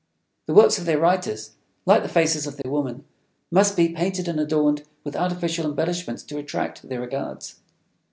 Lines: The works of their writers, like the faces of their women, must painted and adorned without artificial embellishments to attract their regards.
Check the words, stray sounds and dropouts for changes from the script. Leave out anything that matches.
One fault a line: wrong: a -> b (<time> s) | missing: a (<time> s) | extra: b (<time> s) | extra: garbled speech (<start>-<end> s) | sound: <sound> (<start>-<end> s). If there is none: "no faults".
sound: dropout (2.6-2.6 s)
extra: be (3.8 s)
wrong: without -> with (5.0 s)